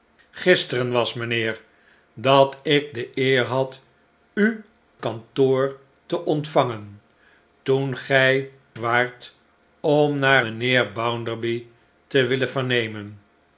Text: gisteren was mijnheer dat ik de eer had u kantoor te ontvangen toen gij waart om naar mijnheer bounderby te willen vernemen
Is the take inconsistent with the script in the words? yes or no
no